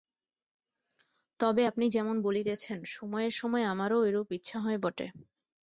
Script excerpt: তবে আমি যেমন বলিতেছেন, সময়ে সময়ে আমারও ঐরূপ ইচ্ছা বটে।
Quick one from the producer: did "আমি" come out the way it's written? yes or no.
no